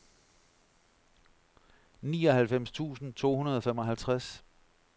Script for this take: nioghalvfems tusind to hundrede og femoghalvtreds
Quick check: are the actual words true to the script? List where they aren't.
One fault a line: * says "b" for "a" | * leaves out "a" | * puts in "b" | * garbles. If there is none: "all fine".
all fine